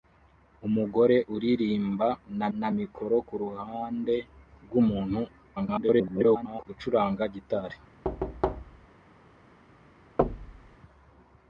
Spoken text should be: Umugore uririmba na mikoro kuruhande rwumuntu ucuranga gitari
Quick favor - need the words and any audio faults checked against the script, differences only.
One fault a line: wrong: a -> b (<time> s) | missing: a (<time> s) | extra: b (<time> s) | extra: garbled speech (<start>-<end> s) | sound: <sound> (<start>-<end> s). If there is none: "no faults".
extra: na (2.6 s)
extra: garbled speech (5.6-6.7 s)
sound: thud (8.0-8.9 s)
sound: thud (10.2-10.8 s)